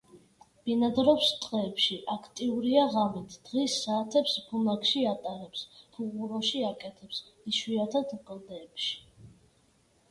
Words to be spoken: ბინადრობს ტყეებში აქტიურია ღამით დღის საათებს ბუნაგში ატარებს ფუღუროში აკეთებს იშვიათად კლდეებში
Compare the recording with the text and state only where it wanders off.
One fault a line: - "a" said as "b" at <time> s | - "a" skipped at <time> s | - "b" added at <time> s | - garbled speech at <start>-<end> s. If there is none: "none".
none